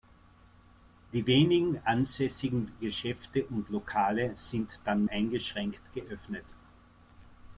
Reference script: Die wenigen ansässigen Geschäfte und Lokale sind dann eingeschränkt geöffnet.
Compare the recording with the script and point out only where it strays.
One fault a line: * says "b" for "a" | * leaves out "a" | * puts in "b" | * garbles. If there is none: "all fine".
all fine